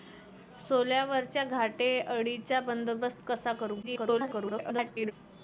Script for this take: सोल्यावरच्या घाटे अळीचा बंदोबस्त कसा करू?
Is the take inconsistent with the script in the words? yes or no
yes